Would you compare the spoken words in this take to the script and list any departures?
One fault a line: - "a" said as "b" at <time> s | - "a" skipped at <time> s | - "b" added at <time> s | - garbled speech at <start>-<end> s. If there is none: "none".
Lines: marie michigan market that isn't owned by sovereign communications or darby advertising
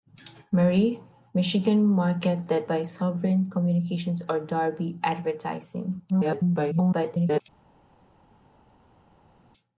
- "isn't owned" skipped at 2.7 s
- garbled speech at 6.1-7.4 s